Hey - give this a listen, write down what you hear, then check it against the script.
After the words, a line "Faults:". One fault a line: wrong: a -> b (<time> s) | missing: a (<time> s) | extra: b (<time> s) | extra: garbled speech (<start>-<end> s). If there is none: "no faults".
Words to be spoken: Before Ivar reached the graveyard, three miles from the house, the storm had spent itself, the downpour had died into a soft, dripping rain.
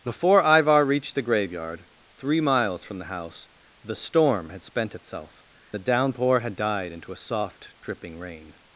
Before Ivar reached the graveyard, three miles from the house, the storm had spent itself, the downpour had died into a soft, dripping rain.
Faults:
no faults